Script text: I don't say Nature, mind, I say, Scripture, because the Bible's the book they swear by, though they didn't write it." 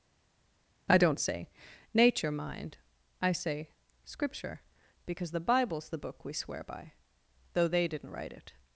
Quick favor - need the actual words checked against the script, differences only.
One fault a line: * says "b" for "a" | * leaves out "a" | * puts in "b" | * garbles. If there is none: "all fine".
* says "we" for "they"